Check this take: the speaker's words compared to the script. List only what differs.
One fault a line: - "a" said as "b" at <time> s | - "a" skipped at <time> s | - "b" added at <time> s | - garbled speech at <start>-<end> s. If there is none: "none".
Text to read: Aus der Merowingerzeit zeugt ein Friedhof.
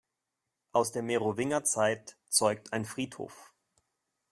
none